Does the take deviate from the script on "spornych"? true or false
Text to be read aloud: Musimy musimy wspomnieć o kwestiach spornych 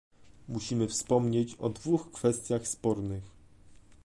false